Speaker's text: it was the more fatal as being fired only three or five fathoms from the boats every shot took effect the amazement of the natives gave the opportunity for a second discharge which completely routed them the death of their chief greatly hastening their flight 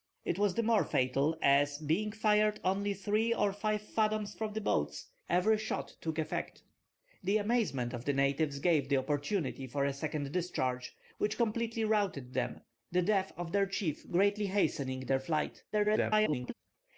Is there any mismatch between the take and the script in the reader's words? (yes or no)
yes